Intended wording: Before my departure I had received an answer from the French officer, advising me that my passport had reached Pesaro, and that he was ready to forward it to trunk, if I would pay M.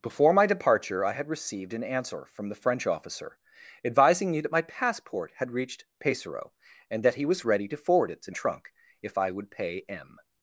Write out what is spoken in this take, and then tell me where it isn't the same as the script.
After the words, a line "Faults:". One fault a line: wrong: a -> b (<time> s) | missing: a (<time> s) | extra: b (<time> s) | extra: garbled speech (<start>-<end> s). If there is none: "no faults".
Before my departure I had received an answer from the French officer, advising me that my passport had reached Pesaro, and that he was ready to forward it to trunk, if I would pay M.
Faults:
no faults